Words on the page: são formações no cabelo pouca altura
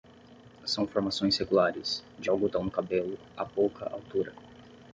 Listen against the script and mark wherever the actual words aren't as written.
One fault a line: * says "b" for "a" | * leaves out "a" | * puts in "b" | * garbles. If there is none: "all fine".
* puts in "regulares de algodão"
* puts in "a"